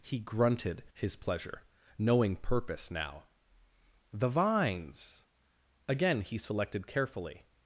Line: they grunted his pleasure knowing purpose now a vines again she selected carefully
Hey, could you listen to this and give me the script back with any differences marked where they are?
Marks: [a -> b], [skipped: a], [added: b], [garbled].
[they -> he] grunted his pleasure knowing purpose now [a -> the] vines again [she -> he] selected carefully